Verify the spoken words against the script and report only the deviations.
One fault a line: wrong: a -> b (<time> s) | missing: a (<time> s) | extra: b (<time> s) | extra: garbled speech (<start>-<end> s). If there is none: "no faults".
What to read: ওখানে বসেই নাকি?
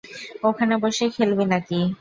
extra: খেলবি (1.1 s)